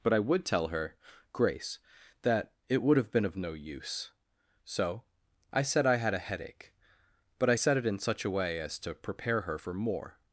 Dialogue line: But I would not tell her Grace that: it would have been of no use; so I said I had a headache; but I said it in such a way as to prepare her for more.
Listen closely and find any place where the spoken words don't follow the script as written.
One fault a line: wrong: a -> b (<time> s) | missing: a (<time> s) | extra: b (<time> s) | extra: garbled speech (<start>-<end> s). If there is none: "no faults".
missing: not (0.5 s)